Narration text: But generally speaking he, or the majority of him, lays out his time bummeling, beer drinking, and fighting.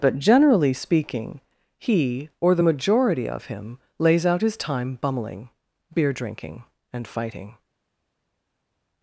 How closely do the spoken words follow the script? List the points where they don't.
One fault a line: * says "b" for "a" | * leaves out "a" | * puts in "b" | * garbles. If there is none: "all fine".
all fine